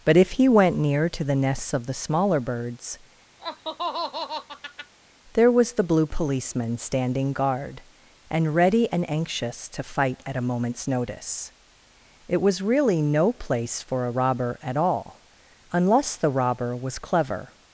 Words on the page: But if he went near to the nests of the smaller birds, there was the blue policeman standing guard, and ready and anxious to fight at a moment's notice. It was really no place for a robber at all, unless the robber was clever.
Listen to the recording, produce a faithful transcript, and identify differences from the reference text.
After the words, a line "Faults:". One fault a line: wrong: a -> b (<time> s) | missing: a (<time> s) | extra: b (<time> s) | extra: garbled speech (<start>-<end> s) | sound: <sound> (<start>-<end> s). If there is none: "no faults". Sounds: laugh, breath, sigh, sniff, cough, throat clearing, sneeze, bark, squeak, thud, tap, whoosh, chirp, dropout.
But if he went near to the nests of the smaller birds, there was the blue policeman standing guard, and ready and anxious to fight at a moment's notice. It was really no place for a robber at all, unless the robber was clever.
Faults:
sound: laugh (3.4-4.9 s)